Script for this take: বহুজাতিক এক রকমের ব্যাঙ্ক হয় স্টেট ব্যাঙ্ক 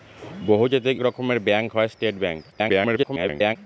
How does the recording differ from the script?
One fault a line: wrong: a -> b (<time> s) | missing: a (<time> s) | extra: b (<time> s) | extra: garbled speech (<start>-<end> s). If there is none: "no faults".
missing: এক (0.9 s)
extra: garbled speech (2.5-3.6 s)